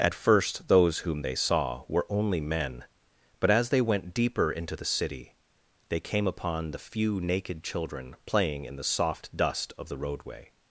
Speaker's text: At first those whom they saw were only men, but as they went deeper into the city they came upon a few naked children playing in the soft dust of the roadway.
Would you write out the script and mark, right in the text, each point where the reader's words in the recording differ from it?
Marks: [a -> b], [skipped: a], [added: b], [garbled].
At first those whom they saw were only men, but as they went deeper into the city they came upon [a -> the] few naked children playing in the soft dust of the roadway.